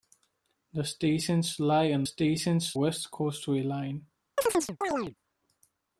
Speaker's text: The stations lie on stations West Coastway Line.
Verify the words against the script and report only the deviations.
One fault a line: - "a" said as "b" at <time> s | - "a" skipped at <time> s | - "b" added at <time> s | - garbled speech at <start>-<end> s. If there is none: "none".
none